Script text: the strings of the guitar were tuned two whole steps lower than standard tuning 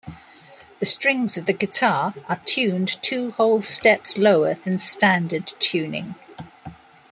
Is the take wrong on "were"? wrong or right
wrong